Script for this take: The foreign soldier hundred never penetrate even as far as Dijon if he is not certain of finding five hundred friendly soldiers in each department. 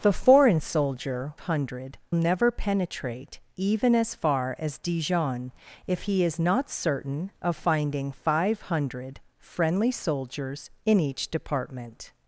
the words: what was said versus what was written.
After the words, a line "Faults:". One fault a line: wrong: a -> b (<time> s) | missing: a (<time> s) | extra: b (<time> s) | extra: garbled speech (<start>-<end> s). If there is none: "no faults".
The foreign soldier hundred never penetrate even as far as Dijon if he is not certain of finding five hundred friendly soldiers in each department.
Faults:
no faults